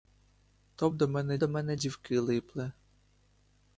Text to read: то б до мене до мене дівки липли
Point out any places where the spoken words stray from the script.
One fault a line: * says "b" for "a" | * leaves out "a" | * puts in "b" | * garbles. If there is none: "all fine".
all fine